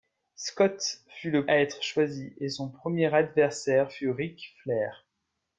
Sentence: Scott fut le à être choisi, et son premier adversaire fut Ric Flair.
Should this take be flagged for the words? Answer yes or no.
no